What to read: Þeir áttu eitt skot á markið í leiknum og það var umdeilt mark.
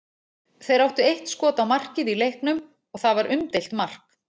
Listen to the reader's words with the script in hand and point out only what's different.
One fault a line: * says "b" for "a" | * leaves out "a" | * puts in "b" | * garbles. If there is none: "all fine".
all fine